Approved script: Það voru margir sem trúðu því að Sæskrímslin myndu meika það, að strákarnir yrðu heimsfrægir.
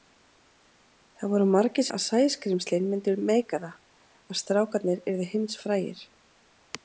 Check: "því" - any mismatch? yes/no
yes